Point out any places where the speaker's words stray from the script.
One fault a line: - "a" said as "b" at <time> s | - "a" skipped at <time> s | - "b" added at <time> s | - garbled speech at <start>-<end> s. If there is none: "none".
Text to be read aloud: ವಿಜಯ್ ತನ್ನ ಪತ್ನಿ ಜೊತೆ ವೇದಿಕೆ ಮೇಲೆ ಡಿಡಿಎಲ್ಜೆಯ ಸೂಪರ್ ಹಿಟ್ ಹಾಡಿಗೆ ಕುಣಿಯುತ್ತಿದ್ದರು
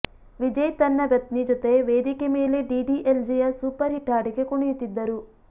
none